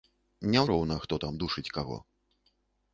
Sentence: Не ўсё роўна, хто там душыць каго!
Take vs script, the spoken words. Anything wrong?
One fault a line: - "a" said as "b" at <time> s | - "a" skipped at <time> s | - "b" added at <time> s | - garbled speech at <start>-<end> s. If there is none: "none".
- "ўсё" skipped at 0.6 s